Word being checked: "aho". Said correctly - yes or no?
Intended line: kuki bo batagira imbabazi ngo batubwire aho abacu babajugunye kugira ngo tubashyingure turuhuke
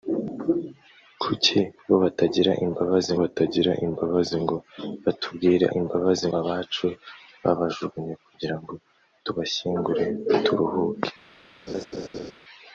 no